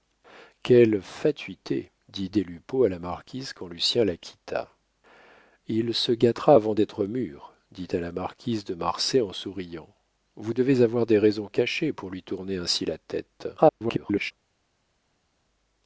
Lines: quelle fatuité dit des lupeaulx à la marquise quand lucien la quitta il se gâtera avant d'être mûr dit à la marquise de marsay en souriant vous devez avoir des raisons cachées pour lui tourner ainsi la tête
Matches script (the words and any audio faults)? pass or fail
fail